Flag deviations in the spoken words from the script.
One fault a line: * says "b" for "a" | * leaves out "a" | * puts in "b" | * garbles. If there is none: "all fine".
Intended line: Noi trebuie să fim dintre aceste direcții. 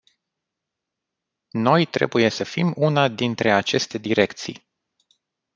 * puts in "una"